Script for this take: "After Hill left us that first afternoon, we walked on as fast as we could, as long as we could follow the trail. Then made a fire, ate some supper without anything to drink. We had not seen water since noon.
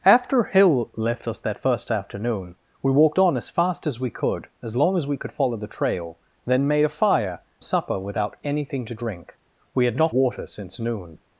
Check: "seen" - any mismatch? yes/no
yes